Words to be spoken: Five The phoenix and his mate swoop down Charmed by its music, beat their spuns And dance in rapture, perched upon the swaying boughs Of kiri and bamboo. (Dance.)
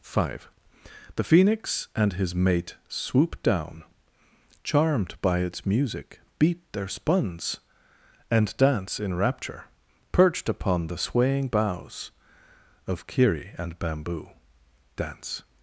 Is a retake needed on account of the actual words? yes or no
no